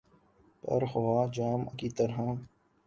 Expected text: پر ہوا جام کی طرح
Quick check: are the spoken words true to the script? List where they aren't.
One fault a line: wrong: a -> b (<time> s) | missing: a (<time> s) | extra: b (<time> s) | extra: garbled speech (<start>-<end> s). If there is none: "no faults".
no faults